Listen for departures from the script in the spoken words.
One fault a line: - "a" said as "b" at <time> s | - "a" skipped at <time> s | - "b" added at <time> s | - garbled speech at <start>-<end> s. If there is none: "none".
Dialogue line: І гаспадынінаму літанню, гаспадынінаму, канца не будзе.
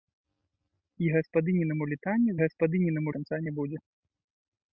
none